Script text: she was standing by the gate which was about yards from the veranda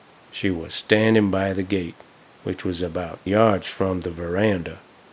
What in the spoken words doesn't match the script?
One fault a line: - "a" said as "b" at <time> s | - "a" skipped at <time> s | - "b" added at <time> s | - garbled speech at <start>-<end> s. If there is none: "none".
none